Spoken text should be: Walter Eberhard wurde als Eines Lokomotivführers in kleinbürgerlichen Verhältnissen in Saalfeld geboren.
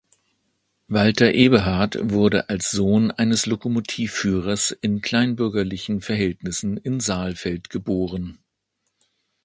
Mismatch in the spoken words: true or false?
true